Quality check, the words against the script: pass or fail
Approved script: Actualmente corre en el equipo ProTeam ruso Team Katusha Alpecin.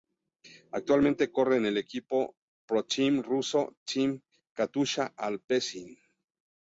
pass